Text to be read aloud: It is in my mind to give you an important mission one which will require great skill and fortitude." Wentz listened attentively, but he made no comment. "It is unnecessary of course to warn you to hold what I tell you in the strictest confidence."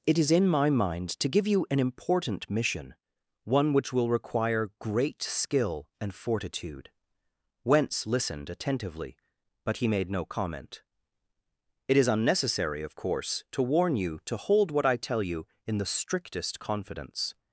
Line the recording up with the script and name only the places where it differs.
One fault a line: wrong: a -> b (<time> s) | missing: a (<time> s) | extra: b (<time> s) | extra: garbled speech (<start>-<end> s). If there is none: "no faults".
no faults